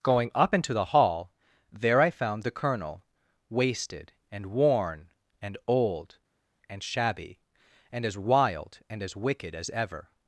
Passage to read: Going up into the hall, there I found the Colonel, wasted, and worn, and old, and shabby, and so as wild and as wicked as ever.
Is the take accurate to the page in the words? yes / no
no